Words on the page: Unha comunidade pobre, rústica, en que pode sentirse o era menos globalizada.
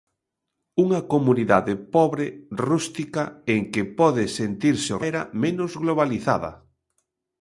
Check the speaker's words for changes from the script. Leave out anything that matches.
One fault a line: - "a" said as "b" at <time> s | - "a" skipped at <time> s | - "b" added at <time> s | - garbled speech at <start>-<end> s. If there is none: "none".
none